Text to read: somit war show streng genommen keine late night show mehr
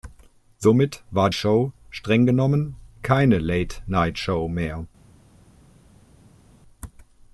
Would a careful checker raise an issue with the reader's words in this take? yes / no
no